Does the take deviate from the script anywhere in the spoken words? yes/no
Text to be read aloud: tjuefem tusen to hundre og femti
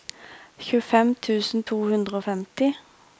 no